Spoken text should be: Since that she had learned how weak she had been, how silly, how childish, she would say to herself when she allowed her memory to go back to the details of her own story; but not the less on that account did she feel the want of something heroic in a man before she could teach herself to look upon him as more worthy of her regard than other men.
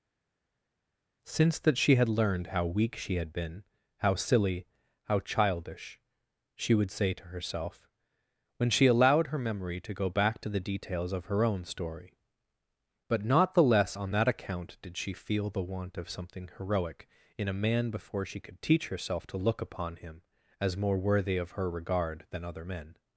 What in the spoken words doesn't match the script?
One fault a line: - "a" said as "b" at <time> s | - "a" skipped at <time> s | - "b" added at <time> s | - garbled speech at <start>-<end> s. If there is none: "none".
none